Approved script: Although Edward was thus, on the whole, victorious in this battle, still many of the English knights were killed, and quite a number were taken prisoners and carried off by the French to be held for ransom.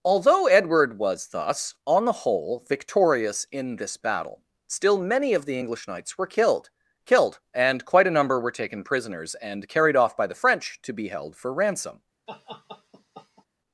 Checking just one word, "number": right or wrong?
right